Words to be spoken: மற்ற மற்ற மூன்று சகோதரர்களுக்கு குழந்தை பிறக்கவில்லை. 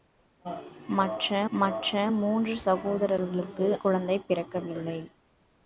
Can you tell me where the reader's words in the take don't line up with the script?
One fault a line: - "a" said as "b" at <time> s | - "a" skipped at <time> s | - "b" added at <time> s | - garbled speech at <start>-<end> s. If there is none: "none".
none